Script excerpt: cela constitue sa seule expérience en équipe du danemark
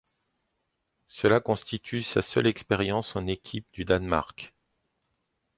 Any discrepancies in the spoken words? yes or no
no